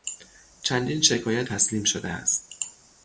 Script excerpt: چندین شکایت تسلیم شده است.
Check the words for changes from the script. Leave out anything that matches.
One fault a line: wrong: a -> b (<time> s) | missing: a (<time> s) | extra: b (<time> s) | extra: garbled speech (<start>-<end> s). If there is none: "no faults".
no faults